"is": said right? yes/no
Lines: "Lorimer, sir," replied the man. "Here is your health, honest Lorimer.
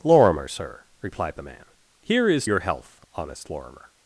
yes